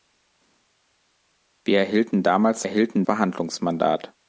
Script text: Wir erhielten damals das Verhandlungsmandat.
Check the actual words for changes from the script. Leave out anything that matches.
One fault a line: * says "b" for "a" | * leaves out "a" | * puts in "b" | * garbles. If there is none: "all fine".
* says "erhielten" for "das"